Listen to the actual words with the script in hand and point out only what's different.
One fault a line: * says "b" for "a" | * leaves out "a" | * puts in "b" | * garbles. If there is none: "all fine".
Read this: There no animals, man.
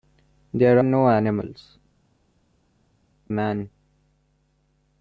all fine